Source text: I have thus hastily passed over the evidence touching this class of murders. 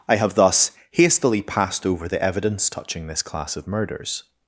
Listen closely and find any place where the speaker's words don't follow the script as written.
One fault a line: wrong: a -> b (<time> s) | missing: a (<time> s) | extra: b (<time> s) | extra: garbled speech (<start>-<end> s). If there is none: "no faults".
no faults